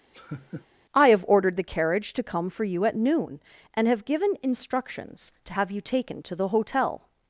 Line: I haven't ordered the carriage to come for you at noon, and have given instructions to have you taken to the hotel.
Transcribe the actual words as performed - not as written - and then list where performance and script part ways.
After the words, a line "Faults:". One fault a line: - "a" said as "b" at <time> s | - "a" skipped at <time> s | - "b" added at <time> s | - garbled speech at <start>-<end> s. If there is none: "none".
I have ordered the carriage to come for you at noon, and have given instructions to have you taken to the hotel.
Faults:
- "haven't" said as "have" at 1.1 s